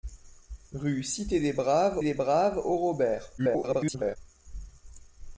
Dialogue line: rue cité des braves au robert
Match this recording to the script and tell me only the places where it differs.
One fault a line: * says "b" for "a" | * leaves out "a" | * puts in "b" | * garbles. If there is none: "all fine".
* puts in "des braves"
* garbles